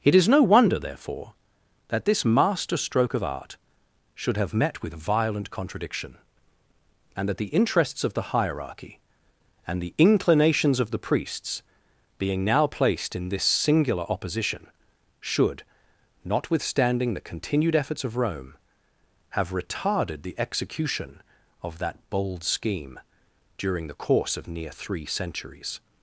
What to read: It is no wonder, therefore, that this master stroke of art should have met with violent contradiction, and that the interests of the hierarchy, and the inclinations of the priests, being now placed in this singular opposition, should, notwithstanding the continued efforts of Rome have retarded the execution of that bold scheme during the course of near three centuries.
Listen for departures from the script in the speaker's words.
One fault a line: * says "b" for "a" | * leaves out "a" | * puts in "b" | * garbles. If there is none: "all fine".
all fine